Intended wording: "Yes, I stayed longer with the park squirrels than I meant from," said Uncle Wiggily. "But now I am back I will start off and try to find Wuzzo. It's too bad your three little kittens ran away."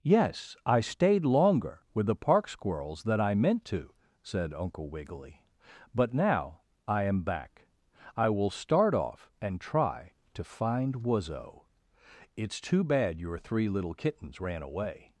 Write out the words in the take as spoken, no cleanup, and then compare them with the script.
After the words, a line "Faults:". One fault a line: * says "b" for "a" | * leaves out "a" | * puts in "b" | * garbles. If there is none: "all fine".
"Yes, I stayed longer with the park squirrels than I meant to," said Uncle Wiggily. "But now I am back I will start off and try to find Wuzzo. It's too bad your three little kittens ran away."
Faults:
* says "to" for "from"